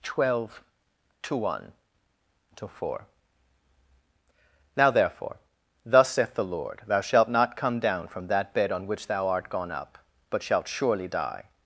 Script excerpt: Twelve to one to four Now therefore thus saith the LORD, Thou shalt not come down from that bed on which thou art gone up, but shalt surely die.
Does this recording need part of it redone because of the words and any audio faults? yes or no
no